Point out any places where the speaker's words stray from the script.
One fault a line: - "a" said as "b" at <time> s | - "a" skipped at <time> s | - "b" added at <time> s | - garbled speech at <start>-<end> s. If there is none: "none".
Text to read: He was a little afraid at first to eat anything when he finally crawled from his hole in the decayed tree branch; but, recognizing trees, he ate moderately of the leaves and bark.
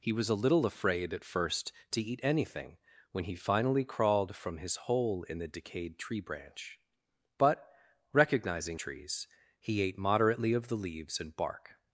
none